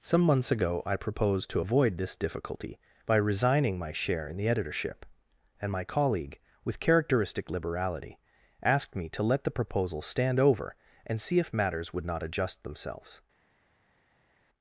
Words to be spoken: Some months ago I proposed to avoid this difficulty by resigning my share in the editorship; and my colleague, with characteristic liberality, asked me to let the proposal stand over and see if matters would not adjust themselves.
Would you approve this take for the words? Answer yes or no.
yes